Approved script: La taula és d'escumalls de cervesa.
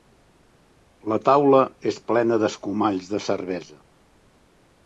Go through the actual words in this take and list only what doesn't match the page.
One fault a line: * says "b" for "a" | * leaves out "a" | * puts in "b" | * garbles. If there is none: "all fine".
* puts in "plena"